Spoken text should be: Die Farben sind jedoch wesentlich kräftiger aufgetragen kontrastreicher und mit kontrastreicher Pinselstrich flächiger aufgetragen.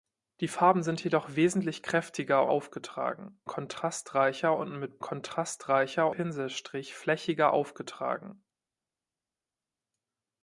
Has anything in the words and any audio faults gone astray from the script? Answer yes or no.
no